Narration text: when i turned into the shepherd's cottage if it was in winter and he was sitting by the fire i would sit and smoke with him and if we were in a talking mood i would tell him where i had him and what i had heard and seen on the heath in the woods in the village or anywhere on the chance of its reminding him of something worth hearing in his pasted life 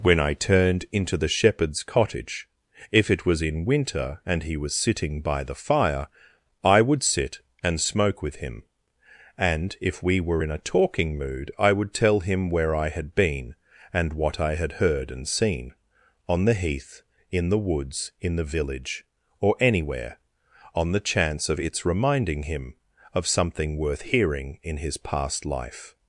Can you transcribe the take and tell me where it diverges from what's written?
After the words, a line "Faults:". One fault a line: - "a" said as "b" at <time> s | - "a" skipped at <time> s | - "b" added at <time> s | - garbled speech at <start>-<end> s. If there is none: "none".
when i turned into the shepherd's cottage if it was in winter and he was sitting by the fire i would sit and smoke with him and if we were in a talking mood i would tell him where i had been and what i had heard and seen on the heath in the woods in the village or anywhere on the chance of its reminding him of something worth hearing in his past life
Faults:
- "him" said as "been" at 13.2 s
- "pasted" said as "past" at 25.0 s